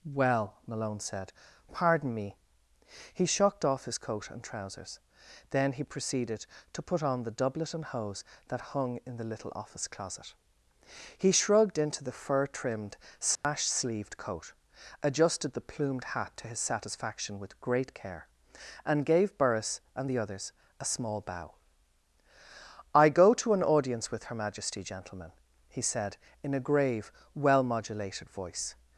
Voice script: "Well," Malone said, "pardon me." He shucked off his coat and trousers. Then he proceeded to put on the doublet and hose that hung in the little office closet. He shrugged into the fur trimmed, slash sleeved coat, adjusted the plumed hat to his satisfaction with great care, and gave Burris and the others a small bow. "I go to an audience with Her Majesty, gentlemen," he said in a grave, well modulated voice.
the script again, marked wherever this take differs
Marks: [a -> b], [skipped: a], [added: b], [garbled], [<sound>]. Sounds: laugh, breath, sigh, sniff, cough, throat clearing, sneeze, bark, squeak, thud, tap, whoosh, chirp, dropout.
"Well," Malone said, "pardon me." He shucked off his coat and trousers. Then he proceeded to put on the doublet and hose that hung in the little office closet. He shrugged into the fur trimmed, slash [dropout] sleeved coat, adjusted the plumed hat to his satisfaction with great care, and gave Burris and the others a small bow. "I go to an audience with Her Majesty, gentlemen," he said in a grave, well modulated voice.